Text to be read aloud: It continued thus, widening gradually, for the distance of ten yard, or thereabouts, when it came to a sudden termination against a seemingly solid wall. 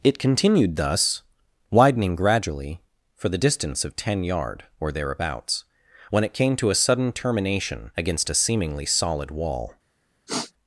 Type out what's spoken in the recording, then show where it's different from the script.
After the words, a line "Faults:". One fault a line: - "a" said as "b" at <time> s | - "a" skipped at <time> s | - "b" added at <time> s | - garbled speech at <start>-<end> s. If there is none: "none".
It continued thus, widening gradually, for the distance of ten yard, or thereabouts, when it came to a sudden termination against a seemingly solid wall.
Faults:
none